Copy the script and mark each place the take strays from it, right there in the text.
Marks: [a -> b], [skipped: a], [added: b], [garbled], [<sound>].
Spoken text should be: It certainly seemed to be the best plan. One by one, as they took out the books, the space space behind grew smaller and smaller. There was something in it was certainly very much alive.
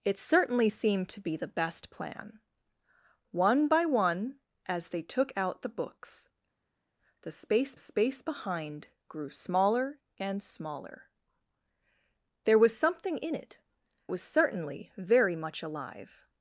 It certainly seemed to be the best plan. One by one, as they took out the books, the space space behind grew smaller and smaller. There was something in it was certainly very much alive.